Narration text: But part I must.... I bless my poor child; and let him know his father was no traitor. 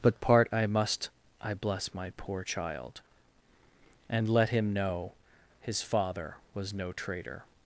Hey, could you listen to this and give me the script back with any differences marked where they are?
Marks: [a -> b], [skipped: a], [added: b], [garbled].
But part I must.... I bless my poor child; and let him know his father was no traitor.